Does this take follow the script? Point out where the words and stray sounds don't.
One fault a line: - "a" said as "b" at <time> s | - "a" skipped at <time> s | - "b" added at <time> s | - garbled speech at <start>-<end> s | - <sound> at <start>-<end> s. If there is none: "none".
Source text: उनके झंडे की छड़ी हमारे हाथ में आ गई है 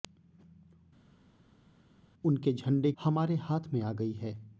- "की छड़ी" skipped at 2.9 s